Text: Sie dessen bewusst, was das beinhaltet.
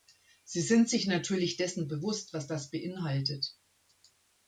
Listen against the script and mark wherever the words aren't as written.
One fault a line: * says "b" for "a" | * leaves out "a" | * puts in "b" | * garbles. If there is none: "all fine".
* puts in "sind sich natürlich"